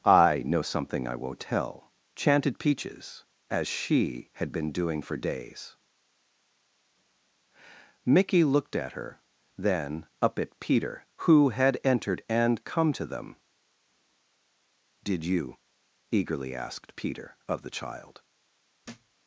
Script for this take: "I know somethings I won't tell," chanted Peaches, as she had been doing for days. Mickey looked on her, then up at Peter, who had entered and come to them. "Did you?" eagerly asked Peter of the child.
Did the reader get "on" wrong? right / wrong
wrong